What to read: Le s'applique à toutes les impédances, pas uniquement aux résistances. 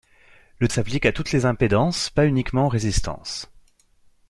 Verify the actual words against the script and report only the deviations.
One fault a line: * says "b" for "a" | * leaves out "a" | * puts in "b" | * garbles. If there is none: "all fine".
all fine